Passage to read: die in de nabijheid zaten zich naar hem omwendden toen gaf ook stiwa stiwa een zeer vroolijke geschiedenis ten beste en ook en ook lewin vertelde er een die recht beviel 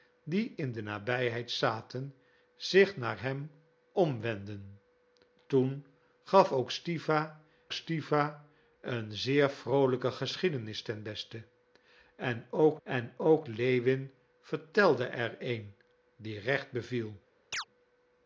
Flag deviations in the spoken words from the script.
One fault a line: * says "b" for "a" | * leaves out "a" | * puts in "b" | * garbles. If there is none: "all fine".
all fine